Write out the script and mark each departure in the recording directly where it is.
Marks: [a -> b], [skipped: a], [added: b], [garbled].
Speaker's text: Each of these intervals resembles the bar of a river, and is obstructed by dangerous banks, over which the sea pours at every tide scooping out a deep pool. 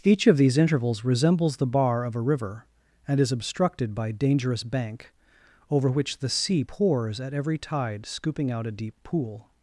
Each of these intervals resembles the bar of a river, and is obstructed by dangerous [banks, -> bank] over which the sea pours at every tide scooping out a deep pool.